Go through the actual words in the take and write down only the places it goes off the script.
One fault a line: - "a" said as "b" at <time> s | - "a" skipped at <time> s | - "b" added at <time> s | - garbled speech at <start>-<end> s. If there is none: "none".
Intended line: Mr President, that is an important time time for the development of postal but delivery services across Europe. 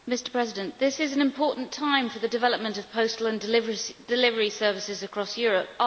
- "that" said as "this" at 0.8 s
- "time" skipped at 2.1 s
- "but" said as "and" at 3.3 s